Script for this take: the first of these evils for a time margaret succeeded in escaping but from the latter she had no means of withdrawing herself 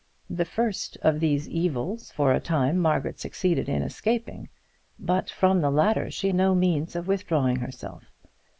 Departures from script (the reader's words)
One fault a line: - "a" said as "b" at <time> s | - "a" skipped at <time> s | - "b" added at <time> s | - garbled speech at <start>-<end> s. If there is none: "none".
- "had" skipped at 6.3 s